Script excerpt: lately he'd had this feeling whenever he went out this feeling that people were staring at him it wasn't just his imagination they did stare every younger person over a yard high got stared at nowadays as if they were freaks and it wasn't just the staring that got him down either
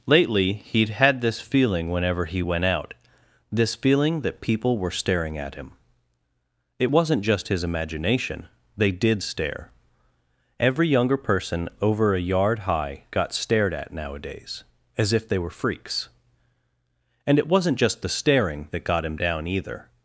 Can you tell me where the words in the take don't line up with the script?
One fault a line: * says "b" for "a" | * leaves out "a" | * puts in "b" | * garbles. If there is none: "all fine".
all fine